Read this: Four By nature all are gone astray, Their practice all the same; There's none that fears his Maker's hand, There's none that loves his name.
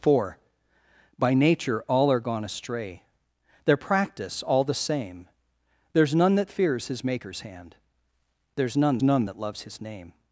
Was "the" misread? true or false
false